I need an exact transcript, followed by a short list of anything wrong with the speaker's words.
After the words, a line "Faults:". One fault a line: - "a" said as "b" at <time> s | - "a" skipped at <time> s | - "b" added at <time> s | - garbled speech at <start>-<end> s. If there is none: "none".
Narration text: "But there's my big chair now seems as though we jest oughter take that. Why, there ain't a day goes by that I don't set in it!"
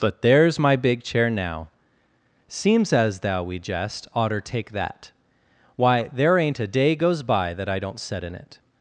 "But there's my big chair now seems as thou we jest oughter take that. Why, there ain't a day goes by that I don't set in it!"
Faults:
- "though" said as "thou" at 3.2 s